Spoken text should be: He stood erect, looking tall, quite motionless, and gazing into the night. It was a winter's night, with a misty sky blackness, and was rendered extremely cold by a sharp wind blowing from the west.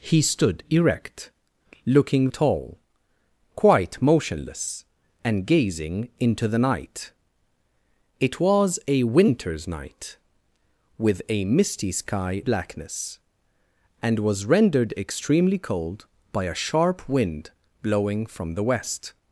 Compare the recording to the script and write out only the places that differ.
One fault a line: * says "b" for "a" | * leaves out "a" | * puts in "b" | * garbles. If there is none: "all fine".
all fine